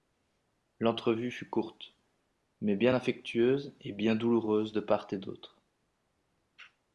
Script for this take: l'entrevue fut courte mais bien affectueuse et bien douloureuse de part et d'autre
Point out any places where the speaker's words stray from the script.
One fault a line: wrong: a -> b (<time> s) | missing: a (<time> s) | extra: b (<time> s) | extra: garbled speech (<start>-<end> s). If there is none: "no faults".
no faults